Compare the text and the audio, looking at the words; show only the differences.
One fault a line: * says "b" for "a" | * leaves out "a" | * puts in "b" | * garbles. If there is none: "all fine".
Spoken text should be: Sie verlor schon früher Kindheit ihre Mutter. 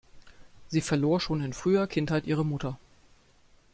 * puts in "in"